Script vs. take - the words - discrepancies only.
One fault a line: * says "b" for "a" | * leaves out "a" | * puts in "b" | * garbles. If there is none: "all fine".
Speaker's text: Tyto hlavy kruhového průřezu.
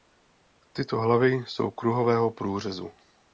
* puts in "jsou"